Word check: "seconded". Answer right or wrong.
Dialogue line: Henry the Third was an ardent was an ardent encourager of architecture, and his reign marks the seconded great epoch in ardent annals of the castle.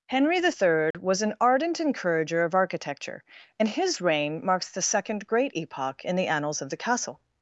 wrong